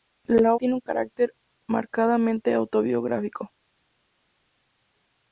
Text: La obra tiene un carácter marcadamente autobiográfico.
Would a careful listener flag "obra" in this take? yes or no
yes